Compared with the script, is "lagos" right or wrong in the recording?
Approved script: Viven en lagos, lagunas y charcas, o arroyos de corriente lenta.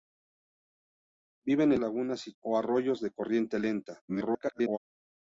wrong